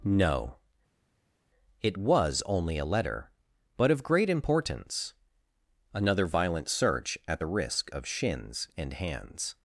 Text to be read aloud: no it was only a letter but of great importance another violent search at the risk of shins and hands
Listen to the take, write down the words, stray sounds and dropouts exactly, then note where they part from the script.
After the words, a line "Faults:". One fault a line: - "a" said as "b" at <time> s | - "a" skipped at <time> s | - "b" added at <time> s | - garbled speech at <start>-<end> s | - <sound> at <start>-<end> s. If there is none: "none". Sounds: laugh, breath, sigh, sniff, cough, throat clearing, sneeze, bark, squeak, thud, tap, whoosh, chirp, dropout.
no it was only a letter but of great importance another violent search at the risk of shins and hands
Faults:
none